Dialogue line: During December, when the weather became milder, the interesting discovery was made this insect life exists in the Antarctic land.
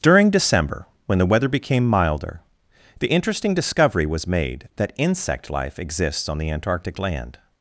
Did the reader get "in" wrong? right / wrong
wrong